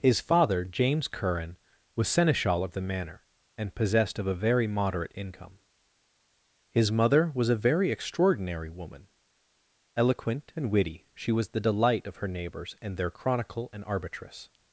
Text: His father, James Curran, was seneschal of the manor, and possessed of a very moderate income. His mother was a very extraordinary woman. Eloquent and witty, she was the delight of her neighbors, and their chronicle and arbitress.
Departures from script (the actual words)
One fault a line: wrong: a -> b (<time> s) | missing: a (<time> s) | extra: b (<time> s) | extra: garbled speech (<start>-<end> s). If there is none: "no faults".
no faults